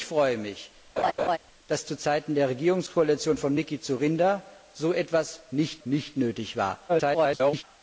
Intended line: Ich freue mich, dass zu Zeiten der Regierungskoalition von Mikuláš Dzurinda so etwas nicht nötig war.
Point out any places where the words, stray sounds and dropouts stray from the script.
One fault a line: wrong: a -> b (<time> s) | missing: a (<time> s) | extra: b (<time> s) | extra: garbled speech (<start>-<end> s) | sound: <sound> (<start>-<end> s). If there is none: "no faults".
sound: laugh (1.0-1.4 s)
extra: nicht (5.8 s)
extra: garbled speech (6.9-7.6 s)